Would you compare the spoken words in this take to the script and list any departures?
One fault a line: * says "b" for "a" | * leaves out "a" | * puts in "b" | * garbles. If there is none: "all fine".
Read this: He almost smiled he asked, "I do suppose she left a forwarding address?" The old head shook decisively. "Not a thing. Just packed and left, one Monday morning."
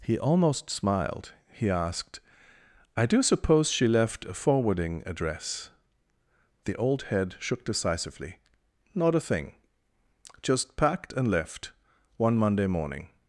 all fine